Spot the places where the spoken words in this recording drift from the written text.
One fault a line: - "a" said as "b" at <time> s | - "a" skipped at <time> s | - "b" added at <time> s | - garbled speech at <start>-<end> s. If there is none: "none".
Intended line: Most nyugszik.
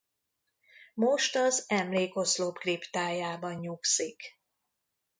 - "az emlékoszlop kriptájában" added at 1.4 s